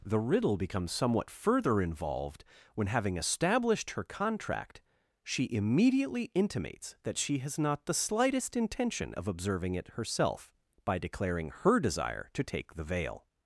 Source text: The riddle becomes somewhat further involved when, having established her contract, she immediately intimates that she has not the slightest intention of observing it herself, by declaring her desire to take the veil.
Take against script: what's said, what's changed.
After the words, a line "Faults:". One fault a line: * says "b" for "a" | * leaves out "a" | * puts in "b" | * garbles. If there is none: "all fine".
The riddle becomes somewhat further involved when, having established her contract, she immediately intimates that she has not the slightest intention of observing it herself, by declaring her desire to take the veil.
Faults:
all fine